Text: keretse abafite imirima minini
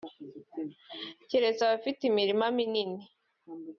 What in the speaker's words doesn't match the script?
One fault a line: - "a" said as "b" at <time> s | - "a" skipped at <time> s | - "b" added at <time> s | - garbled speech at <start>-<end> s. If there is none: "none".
none